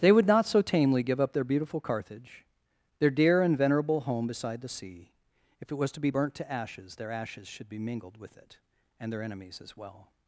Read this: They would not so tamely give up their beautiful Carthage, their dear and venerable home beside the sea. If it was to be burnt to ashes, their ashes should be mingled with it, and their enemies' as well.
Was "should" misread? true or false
false